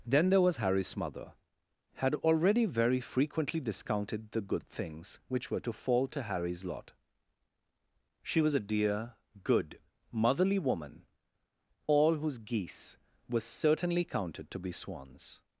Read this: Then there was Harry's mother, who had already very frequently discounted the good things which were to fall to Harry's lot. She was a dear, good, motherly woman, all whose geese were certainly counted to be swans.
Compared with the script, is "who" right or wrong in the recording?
wrong